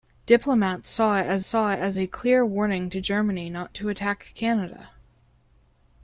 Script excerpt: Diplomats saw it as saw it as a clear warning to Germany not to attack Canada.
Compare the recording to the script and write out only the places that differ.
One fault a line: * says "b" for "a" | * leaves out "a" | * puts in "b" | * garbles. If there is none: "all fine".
all fine